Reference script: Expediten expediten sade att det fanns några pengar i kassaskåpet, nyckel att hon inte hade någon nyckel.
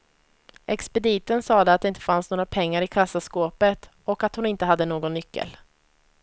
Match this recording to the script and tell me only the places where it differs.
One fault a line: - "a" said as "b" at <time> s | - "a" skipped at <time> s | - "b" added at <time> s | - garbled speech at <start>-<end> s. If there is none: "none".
- "expediten" skipped at 1.4 s
- "inte" added at 1.8 s
- "nyckel" said as "och" at 4.0 s